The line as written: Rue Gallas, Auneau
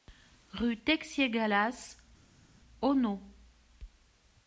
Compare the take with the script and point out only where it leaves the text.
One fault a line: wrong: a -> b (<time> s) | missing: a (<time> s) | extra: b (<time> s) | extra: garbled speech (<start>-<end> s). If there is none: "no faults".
extra: Texier (0.7 s)